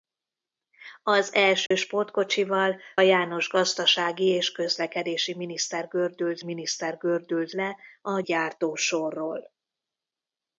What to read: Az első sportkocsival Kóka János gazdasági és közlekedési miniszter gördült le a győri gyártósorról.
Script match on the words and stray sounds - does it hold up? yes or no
no